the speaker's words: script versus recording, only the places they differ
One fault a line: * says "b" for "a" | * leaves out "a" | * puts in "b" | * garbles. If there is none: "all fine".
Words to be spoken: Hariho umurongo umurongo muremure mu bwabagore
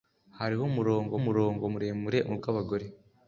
all fine